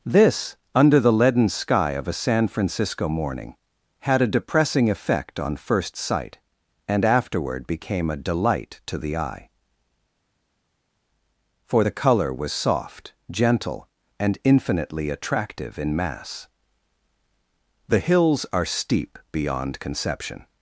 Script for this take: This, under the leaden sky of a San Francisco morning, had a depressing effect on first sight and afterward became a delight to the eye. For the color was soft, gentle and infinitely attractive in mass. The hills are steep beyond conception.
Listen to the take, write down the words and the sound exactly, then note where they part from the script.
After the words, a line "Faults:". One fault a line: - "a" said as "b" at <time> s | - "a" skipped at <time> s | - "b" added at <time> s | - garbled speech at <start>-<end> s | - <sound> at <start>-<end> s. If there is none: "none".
This, under the leaden sky of a San Francisco morning, had a depressing effect on first sight and afterward became a delight to the eye. For the color was soft, gentle and infinitely attractive in mass. The hills are steep beyond conception.
Faults:
none